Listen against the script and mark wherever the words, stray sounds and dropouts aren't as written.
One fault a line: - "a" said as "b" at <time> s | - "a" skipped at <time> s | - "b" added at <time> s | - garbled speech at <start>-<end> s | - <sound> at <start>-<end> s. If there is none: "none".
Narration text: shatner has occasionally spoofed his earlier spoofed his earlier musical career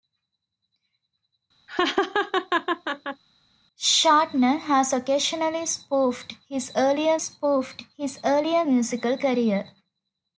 - laugh at 1.7-3.2 s